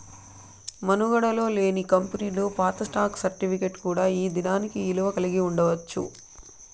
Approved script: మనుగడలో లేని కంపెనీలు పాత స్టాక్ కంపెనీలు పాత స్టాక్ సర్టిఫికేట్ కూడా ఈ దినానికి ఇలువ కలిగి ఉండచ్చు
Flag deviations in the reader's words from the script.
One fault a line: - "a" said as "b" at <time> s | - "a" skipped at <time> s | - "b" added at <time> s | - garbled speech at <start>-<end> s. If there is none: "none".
- "కంపెనీలు పాత స్టాక్" skipped at 3.2 s